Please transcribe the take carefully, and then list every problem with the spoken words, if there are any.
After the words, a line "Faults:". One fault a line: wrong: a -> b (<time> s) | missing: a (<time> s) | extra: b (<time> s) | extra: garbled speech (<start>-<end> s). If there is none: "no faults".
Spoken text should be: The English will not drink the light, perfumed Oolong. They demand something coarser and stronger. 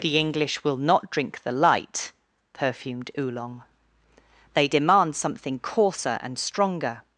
The English will not drink the light, perfumed Oolong. They demand something coarser and stronger.
Faults:
no faults